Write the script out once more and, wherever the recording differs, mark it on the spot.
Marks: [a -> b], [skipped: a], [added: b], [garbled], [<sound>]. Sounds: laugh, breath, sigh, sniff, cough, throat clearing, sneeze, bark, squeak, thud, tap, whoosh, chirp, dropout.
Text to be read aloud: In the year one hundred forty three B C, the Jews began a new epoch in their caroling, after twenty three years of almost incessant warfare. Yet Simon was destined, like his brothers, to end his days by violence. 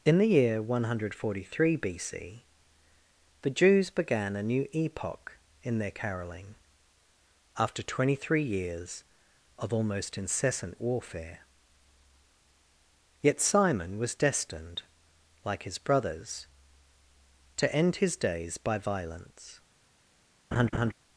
In the year one hundred forty three B C, the Jews began a new epoch in their caroling, after twenty three years of almost incessant warfare. Yet Simon was destined, like his brothers, to end his days by violence. [laugh]